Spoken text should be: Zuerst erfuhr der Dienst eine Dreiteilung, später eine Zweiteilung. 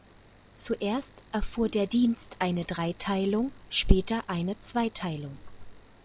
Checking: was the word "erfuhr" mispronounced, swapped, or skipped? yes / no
no